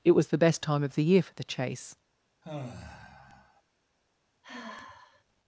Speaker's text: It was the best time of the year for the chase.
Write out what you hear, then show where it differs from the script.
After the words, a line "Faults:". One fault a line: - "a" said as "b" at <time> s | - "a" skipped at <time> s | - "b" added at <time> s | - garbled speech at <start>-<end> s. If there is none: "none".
It was the best time of the year for the chase.
Faults:
none